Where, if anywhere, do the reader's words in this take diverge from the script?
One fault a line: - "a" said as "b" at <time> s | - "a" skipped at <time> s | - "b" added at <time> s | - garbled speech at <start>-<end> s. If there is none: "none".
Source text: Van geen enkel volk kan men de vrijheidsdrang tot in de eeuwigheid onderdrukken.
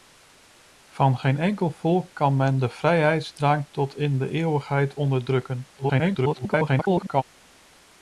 - garbled speech at 5.8-7.2 s